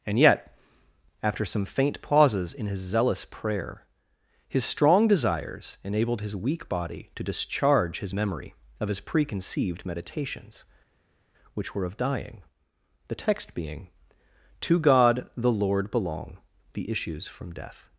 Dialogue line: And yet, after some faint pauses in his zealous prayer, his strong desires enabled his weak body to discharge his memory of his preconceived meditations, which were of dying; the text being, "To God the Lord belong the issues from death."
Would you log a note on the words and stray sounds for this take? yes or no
no